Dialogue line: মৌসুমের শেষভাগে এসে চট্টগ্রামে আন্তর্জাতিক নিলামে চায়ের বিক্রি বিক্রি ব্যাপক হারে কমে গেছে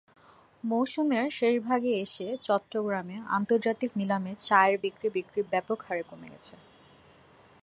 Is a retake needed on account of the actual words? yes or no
no